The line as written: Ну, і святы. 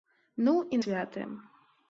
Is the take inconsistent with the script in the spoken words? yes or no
no